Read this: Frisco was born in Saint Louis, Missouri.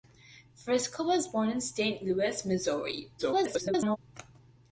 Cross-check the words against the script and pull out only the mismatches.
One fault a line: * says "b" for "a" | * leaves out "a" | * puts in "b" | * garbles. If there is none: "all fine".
* garbles